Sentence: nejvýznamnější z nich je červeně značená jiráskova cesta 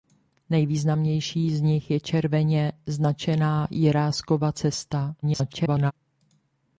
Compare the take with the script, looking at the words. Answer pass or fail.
fail